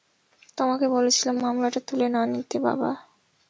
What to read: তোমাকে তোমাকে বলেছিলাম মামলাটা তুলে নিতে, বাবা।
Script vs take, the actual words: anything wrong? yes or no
yes